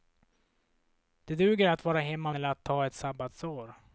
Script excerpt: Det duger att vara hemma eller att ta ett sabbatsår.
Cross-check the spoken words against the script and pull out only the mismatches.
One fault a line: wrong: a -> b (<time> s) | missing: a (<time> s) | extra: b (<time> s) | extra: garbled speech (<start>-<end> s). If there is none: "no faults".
no faults